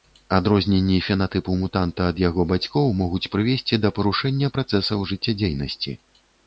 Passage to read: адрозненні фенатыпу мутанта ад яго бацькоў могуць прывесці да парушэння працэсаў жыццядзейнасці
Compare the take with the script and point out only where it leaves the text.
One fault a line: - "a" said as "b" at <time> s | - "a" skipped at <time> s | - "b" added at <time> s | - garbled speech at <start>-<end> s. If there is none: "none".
none